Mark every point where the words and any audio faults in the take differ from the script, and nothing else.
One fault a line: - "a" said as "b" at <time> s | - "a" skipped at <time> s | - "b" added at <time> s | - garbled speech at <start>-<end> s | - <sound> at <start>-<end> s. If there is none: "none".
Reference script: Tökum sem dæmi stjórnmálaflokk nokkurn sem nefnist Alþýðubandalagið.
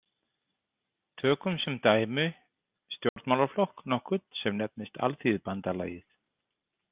- dropout at 3.1-3.2 s